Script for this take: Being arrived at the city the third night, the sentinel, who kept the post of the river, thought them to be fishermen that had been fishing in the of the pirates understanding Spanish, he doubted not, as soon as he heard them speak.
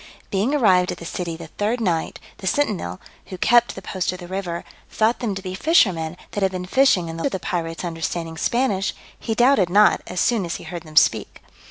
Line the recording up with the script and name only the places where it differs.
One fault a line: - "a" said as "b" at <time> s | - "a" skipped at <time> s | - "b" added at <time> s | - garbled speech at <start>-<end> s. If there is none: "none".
none